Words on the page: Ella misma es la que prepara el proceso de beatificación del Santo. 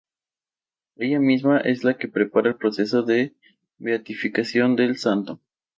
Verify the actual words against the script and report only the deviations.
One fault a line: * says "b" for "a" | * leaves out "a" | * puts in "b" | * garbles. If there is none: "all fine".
all fine